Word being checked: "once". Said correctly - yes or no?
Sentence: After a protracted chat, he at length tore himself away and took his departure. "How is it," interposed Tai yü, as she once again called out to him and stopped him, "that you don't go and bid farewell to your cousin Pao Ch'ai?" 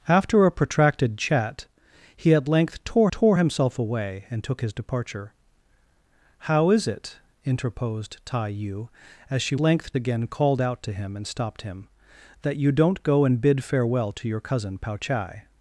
no